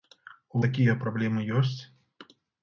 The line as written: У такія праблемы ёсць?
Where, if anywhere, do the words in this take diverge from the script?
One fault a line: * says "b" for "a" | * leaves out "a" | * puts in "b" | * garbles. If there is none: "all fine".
all fine